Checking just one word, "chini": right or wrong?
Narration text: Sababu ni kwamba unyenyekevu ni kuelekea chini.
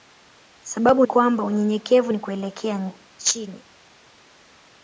right